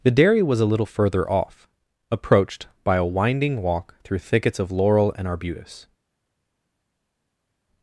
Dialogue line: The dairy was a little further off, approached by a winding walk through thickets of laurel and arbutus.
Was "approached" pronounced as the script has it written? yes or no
yes